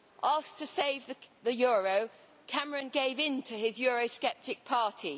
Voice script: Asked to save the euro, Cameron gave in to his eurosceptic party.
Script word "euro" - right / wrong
right